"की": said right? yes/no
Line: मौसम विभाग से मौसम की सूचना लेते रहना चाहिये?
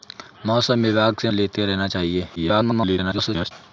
no